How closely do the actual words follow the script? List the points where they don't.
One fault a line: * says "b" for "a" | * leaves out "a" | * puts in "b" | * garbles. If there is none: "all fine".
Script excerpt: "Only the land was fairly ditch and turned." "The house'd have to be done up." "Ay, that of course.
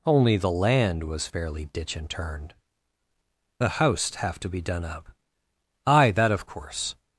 all fine